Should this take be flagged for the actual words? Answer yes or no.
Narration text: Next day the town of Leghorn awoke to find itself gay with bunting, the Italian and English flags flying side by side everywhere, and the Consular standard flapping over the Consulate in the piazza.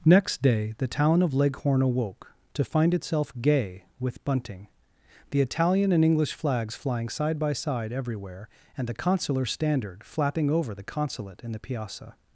no